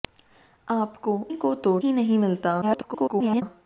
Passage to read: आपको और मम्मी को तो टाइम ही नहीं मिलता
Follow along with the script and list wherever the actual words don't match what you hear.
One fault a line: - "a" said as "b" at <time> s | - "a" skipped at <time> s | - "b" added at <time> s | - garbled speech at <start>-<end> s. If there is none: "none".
- "और मम्मी" skipped at 1.2 s
- "टाइम" skipped at 1.8 s
- garbled speech at 2.6-3.4 s